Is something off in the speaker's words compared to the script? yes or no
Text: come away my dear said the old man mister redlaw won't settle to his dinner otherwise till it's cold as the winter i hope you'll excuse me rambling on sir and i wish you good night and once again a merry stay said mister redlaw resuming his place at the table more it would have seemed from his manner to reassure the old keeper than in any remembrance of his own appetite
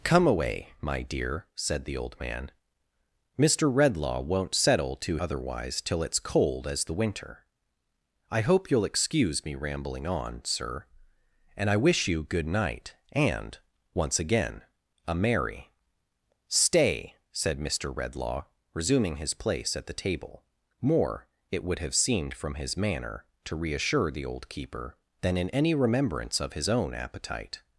yes